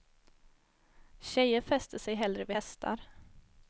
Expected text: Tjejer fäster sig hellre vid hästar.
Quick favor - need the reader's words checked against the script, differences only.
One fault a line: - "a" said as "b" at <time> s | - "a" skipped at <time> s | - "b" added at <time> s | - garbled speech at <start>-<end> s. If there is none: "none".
none